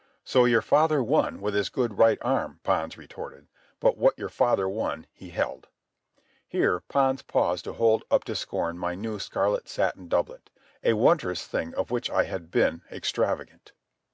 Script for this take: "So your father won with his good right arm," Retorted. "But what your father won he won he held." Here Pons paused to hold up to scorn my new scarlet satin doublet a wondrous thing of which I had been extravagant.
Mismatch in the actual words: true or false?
true